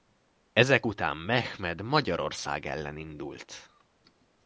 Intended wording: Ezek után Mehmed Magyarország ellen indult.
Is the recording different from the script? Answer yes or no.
no